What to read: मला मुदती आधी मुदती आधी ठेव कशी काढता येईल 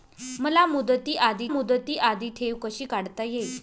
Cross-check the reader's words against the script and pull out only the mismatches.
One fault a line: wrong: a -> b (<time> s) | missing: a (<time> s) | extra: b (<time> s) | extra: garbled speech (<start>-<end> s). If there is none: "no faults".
no faults